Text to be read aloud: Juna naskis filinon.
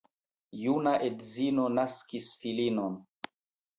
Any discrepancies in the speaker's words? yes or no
yes